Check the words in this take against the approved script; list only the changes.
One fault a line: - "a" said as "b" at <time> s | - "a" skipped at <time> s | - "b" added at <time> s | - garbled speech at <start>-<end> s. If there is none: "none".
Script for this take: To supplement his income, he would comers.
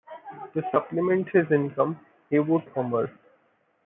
none